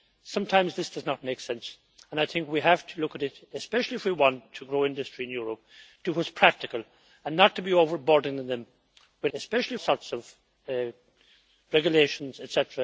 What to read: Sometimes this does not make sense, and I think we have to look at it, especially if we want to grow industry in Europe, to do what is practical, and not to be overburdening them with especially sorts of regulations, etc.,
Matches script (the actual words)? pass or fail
pass